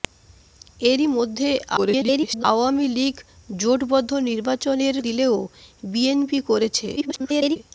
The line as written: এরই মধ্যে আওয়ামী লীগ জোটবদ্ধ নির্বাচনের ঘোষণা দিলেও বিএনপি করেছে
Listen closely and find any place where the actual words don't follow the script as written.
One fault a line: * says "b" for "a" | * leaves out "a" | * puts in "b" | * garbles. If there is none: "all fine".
* garbles
* leaves out "ঘোষণা"
* garbles